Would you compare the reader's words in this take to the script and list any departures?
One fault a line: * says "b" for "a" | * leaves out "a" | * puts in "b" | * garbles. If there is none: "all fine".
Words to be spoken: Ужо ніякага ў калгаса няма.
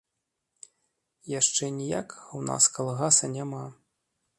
* says "Яшчэ" for "Ужо"
* puts in "нас"